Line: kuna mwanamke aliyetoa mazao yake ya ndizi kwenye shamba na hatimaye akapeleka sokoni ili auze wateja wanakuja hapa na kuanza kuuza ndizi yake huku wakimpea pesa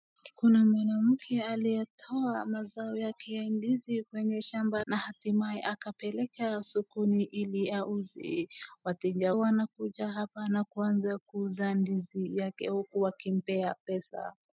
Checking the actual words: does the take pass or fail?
pass